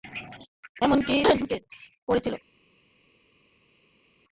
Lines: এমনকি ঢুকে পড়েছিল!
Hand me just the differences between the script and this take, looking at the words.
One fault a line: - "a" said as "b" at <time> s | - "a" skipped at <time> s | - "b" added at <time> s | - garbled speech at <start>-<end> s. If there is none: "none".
none